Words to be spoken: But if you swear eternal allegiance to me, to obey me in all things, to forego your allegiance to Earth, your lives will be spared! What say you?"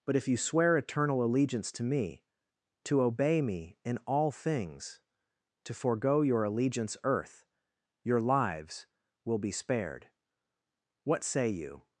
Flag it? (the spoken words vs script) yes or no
yes